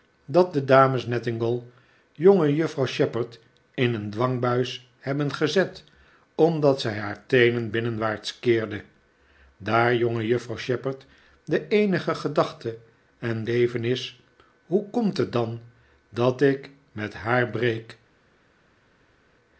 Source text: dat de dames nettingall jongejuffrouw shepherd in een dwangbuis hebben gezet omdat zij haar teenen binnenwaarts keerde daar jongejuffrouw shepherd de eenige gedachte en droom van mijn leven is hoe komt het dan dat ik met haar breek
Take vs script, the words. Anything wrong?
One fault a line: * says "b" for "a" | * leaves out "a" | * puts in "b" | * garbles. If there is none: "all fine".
* leaves out "droom van mijn"